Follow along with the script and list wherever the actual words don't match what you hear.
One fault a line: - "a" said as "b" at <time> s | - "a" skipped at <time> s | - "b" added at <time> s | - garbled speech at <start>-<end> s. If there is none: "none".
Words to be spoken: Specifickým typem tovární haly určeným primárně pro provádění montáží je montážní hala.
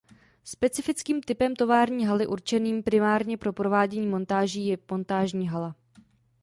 none